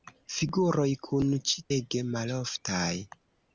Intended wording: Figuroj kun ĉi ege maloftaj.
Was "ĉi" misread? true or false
false